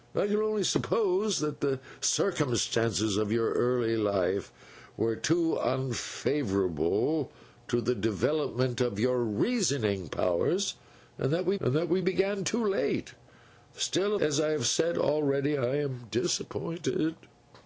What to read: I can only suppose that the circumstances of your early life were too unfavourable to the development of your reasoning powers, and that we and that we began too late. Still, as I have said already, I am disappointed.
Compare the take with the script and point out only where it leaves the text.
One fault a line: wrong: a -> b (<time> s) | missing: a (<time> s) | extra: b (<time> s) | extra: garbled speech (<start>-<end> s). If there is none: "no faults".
no faults